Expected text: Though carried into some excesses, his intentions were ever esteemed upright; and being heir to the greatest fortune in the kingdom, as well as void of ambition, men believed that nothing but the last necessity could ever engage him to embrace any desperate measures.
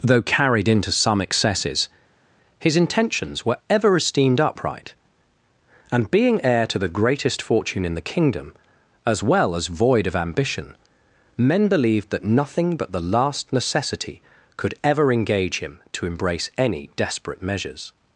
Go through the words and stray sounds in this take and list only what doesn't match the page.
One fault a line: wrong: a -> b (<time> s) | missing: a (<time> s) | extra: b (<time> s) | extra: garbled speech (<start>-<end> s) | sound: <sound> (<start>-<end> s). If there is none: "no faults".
no faults